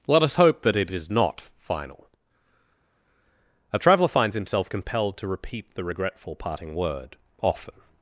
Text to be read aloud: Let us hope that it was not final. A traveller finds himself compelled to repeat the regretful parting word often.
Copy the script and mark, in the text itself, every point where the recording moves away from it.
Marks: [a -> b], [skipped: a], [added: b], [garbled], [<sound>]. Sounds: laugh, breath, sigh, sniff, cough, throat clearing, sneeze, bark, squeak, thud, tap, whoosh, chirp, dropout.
Let us hope that it [was -> is] not final. A traveller finds himself compelled to repeat the regretful parting word often.